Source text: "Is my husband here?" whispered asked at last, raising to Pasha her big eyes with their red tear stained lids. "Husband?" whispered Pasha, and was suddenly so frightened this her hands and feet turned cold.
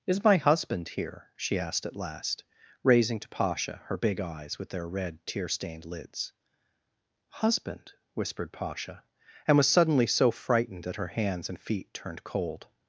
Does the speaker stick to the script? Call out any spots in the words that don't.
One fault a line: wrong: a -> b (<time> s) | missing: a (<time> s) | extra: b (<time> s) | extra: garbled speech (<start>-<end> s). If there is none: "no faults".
wrong: whispered -> she (1.4 s)
wrong: this -> that (10.9 s)